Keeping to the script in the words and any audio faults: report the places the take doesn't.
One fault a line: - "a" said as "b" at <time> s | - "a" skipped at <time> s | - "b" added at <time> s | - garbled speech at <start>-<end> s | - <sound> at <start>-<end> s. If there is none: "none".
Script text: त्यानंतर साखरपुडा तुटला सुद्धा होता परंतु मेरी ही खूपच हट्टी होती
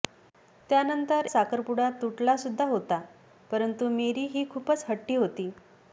none